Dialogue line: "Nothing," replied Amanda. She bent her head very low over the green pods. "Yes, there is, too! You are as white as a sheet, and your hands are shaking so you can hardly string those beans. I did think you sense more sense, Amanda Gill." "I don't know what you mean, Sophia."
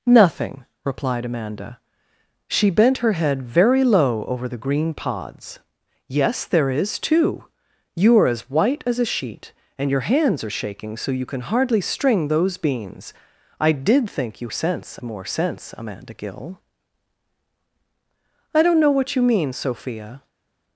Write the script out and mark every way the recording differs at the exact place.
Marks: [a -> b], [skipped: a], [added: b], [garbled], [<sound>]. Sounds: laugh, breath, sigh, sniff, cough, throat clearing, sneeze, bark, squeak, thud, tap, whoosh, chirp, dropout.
"Nothing," replied Amanda. She bent her head very low over the green pods. "Yes, there is, too! You are as white as a sheet, and your hands are shaking so you can hardly string those beans. I did think you sense more sense, Amanda Gill." "I don't know what you mean, Sophia."